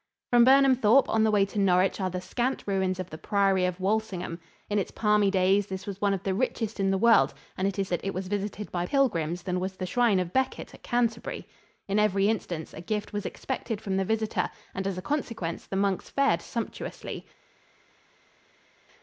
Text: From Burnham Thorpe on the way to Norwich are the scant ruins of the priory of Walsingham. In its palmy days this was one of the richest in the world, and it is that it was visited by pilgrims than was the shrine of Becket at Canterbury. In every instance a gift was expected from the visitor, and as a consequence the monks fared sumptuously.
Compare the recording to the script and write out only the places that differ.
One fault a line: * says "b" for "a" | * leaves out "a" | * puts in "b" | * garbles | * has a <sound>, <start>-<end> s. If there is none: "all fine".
all fine